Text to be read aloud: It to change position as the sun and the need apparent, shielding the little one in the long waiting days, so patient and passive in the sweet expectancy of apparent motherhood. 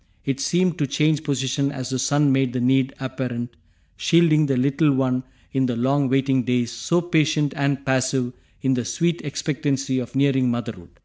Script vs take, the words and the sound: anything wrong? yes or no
yes